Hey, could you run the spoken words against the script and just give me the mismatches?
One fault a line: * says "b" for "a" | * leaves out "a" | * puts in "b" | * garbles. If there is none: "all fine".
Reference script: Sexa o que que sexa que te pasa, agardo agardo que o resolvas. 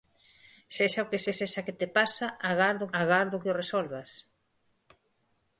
all fine